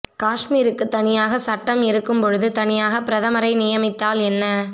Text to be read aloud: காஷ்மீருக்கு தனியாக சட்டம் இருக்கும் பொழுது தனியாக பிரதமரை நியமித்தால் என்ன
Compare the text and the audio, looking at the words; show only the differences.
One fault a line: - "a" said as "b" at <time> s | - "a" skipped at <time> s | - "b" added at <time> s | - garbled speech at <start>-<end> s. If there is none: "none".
none